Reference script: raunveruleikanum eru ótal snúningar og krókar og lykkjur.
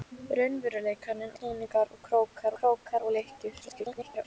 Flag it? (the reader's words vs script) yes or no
yes